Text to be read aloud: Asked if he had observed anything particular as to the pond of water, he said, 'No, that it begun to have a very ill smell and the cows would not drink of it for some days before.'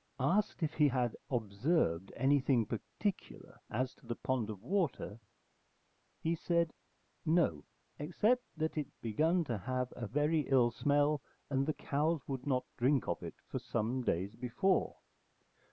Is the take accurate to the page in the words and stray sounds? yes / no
no